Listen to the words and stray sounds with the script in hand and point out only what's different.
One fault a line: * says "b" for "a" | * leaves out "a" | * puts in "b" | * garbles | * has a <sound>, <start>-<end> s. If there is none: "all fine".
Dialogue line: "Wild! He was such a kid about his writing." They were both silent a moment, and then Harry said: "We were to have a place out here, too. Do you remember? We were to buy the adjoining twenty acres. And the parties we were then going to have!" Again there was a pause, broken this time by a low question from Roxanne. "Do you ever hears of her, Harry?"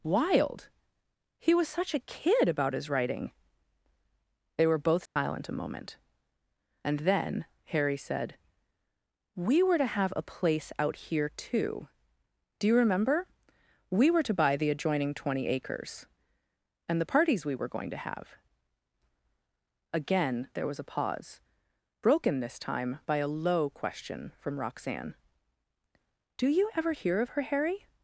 * has a dropout, 5.1-5.2 s
* leaves out "then"
* says "hear" for "hears"